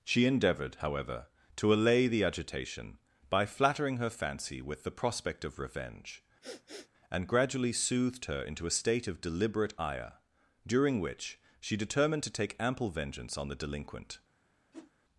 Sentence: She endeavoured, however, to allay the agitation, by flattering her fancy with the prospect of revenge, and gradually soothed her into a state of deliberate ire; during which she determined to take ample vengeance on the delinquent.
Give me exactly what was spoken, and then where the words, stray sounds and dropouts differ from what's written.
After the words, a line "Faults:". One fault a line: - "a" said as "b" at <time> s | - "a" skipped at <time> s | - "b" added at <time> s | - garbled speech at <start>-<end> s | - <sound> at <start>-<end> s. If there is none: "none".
She endeavoured, however, to allay the agitation, by flattering her fancy with the prospect of revenge, and gradually soothed her into a state of deliberate ire; during which she determined to take ample vengeance on the delinquent.
Faults:
- sniff at 6.4-6.9 s
- whoosh at 14.7-14.9 s